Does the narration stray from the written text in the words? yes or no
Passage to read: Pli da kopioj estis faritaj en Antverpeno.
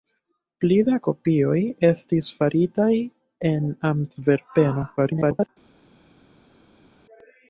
yes